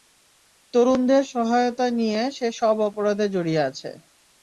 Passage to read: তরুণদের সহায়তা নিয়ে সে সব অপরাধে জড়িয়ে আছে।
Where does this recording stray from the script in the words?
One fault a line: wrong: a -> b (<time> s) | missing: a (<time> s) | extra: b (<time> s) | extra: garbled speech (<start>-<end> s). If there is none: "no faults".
no faults